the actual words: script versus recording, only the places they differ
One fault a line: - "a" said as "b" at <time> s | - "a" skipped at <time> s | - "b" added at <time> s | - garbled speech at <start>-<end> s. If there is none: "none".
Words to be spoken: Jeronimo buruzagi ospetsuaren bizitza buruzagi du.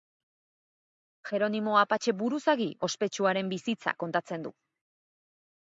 - "apatxe" added at 1.8 s
- "buruzagi" said as "kontatzen" at 4.1 s